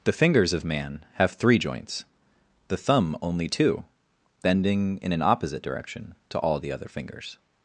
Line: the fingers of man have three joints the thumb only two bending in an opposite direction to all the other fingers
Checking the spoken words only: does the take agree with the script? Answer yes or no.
yes